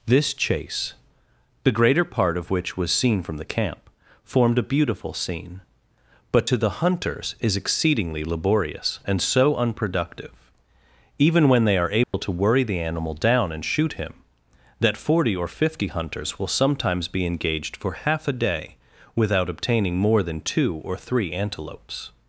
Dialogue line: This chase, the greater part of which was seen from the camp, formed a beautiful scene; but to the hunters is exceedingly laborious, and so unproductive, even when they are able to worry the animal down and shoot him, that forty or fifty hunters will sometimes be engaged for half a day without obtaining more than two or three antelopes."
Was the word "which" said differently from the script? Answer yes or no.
no